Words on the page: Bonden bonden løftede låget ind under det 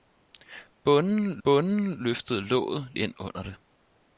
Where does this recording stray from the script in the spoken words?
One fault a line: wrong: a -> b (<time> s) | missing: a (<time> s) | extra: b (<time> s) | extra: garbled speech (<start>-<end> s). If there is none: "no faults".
no faults